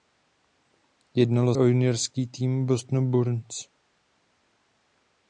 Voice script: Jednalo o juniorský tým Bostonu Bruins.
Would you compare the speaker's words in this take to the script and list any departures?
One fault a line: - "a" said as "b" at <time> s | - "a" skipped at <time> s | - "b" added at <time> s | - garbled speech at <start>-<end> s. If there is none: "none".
none